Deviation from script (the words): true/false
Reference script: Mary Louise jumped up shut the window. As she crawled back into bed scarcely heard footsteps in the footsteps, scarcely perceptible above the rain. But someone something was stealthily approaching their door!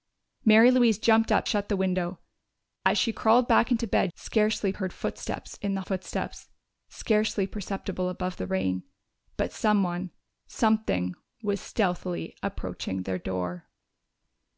false